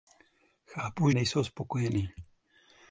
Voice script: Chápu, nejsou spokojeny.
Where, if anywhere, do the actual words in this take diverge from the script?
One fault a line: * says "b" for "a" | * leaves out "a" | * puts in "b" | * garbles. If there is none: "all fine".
all fine